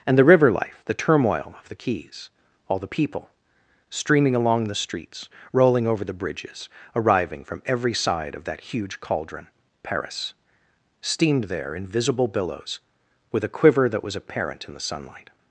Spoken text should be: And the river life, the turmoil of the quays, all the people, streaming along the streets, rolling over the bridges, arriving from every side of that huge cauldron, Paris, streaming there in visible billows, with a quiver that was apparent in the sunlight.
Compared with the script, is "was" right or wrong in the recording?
right